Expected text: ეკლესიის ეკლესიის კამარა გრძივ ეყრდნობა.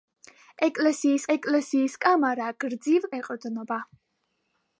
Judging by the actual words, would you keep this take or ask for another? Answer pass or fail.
pass